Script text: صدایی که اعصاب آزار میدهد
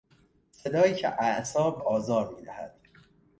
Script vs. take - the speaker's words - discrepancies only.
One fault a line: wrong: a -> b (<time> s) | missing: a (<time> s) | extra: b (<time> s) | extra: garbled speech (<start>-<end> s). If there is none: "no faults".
no faults